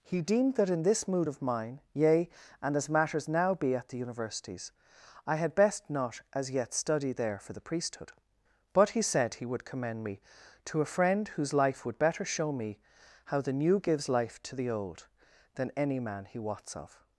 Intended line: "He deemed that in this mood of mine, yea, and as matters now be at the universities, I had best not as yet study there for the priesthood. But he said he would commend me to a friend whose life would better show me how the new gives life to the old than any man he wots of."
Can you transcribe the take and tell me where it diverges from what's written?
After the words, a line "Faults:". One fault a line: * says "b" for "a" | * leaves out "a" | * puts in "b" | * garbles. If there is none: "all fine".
"He deemed that in this mood of mine, yea, and as matters now be at the universities, I had best not as yet study there for the priesthood. But he said he would commend me to a friend whose life would better show me how the new gives life to the old than any man he wots of."
Faults:
all fine